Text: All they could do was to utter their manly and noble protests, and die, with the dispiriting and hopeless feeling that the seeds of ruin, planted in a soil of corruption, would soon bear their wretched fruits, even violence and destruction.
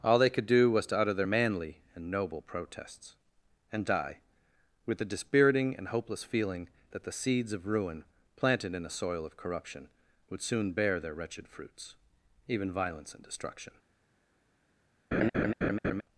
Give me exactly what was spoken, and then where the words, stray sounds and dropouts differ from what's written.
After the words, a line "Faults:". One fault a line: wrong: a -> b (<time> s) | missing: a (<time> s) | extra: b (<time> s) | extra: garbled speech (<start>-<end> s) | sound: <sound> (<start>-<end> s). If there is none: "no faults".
All they could do was to utter their manly and noble protests, and die, with the dispiriting and hopeless feeling that the seeds of ruin, planted in a soil of corruption, would soon bear their wretched fruits, even violence and destruction.
Faults:
sound: laugh (15.1-16.0 s)